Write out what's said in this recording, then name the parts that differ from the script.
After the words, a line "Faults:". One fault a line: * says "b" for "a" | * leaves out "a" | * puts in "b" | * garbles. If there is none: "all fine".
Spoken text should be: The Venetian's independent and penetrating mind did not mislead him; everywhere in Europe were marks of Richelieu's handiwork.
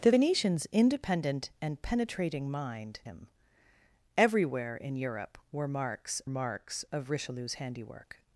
The Venetian's independent and penetrating mind him; everywhere in Europe were marks marks of Richelieu's handiwork.
Faults:
* leaves out "did not mislead"
* puts in "marks"